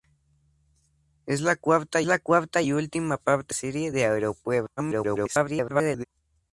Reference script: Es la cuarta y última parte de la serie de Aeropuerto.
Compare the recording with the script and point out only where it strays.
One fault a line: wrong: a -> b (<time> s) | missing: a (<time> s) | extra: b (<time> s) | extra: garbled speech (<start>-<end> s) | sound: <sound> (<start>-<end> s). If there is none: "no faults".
extra: la cuarta (2.0 s)
missing: de la (3.5 s)
extra: garbled speech (4.8-6.0 s)